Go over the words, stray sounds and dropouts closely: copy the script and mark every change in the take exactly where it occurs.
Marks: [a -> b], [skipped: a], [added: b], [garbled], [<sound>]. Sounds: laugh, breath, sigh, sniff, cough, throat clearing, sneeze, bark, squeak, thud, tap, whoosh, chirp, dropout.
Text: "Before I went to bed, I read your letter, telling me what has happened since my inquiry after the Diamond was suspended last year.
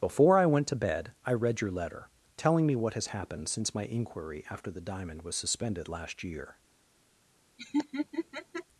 "Before I went to bed, I read your letter, telling me what has happened since my inquiry after the Diamond was suspended last year. [laugh]